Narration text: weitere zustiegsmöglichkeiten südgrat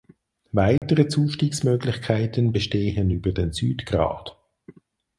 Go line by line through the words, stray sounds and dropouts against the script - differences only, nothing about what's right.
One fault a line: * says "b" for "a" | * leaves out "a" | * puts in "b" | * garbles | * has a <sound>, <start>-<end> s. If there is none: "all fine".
* has a dropout, 0.8-0.8 s
* puts in "bestehen über den"